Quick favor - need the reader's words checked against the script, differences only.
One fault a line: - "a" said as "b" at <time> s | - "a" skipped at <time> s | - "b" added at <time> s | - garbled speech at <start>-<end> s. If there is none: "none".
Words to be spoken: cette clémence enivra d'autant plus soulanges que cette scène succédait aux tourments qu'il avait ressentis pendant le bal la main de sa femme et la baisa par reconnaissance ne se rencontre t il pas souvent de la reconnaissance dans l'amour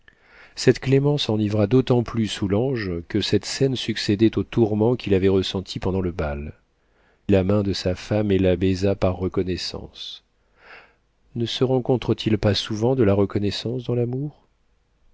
none